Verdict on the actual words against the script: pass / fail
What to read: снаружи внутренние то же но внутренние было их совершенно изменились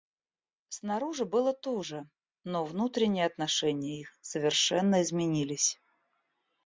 fail